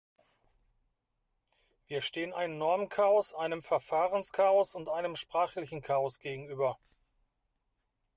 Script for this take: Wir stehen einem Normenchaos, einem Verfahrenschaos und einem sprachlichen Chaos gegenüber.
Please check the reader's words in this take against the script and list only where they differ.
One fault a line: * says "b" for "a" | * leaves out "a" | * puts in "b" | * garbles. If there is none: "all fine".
all fine